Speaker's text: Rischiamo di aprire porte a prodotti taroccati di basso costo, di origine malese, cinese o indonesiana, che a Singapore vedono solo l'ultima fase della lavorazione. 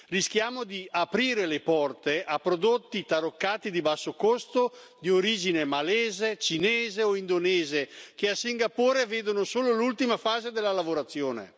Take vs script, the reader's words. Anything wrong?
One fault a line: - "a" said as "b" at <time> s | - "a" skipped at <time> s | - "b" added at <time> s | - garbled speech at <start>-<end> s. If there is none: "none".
- "le" added at 1.4 s